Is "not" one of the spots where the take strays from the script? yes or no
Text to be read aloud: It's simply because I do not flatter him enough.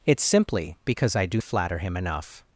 yes